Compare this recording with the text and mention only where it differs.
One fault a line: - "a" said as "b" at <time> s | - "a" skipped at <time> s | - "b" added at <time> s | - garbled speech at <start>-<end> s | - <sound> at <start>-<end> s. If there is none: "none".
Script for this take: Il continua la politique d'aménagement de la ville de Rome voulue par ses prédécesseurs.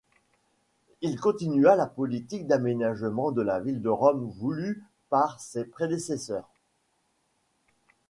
none